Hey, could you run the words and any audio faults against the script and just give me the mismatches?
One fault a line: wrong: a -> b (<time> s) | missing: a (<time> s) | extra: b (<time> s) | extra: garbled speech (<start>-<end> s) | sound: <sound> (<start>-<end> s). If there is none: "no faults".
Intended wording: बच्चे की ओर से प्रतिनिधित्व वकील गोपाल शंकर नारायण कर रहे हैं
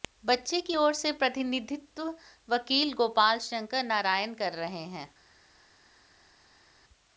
no faults